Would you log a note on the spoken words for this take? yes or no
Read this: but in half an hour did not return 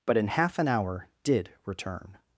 yes